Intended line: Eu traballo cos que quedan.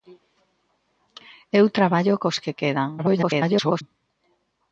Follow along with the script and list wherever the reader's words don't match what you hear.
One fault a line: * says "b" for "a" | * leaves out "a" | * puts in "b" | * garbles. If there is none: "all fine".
* garbles